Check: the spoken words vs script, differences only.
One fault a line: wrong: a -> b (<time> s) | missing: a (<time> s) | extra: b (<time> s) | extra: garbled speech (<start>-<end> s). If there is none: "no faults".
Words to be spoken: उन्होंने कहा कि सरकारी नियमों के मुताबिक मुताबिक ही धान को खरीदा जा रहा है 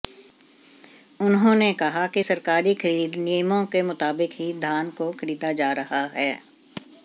extra: खरीद (2.7 s)
missing: मुताबिक (4.3 s)